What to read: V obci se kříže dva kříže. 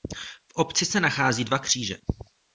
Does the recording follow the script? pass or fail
fail